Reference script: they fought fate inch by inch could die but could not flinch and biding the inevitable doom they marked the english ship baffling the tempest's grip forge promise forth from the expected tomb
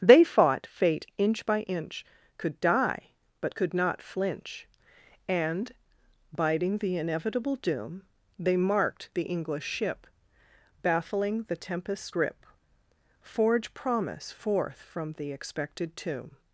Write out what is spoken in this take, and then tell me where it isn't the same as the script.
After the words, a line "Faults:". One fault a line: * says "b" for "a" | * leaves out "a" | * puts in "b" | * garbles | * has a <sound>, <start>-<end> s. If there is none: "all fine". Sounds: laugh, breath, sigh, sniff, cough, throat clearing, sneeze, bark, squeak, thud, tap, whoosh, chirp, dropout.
they fought fate inch by inch could die but could not flinch and biding the inevitable doom they marked the english ship baffling the tempest's grip forge promise forth from the expected tomb
Faults:
all fine